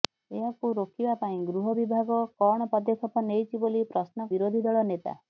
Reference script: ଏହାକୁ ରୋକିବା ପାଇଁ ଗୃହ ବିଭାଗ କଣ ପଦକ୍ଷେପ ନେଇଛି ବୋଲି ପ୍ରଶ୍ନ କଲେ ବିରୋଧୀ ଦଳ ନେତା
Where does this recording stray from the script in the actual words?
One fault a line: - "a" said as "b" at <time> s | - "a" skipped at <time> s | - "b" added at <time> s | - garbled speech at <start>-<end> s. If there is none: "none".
- "କଲେ" skipped at 4.3 s